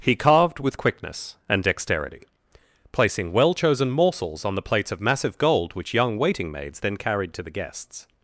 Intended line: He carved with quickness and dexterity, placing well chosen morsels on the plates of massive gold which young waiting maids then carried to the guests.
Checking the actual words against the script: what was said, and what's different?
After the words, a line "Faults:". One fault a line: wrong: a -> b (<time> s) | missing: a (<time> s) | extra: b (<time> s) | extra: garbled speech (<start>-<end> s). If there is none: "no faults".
He carved with quickness and dexterity, placing well chosen morsels on the plates of massive gold which young waiting maids then carried to the guests.
Faults:
no faults